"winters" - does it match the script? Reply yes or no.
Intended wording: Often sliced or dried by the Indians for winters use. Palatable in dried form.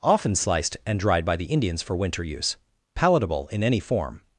no